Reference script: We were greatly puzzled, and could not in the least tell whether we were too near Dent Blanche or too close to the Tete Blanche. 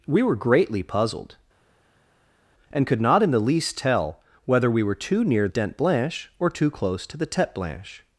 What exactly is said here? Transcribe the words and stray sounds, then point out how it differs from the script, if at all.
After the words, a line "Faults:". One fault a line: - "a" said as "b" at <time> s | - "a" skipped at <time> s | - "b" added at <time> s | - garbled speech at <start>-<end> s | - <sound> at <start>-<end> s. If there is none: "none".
We were greatly puzzled, and could not in the least tell whether we were too near Dent Blanche or too close to the Tete Blanche.
Faults:
none